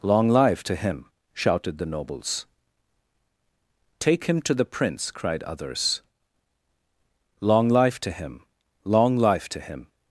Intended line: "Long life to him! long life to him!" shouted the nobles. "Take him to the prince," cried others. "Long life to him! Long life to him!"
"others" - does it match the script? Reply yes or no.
yes